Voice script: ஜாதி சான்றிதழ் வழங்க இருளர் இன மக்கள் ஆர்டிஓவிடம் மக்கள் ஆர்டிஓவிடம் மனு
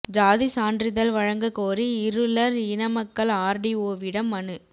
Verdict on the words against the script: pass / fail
fail